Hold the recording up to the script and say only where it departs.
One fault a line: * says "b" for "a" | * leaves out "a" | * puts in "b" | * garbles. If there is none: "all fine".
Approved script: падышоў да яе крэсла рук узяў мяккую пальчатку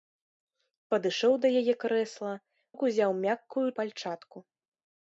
all fine